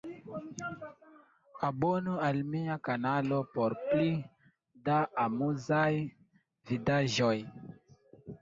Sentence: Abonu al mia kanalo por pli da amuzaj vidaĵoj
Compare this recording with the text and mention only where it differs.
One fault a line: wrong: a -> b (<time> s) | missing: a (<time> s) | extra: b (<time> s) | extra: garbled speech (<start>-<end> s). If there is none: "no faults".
no faults